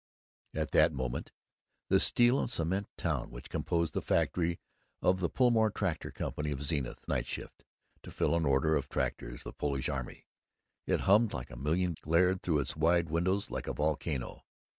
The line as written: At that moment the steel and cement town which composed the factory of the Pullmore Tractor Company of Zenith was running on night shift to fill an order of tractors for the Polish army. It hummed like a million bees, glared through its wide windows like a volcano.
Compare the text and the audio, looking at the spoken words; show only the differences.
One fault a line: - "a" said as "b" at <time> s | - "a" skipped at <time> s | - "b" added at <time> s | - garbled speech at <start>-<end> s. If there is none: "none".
- "was running on" skipped at 7.0 s
- "for" skipped at 9.4 s
- "bees" skipped at 11.9 s